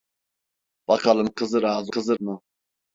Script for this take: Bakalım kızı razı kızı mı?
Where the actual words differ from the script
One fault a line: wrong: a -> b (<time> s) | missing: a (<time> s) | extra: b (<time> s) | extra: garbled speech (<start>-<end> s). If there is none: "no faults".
no faults